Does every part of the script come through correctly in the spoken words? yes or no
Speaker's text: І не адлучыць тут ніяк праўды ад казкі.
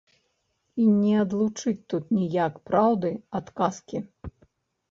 yes